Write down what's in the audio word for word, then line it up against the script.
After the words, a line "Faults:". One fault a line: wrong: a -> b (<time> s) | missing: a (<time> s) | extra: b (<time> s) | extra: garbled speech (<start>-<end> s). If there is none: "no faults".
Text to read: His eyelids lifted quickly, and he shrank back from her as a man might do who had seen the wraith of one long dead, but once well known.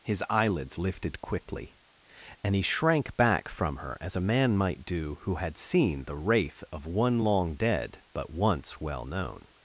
His eyelids lifted quickly, and he shrank back from her as a man might do who had seen the wraith of one long dead, but once well known.
Faults:
no faults